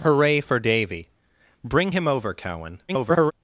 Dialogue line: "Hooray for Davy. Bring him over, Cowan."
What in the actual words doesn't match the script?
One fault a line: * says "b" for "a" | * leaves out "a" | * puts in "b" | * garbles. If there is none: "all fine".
* garbles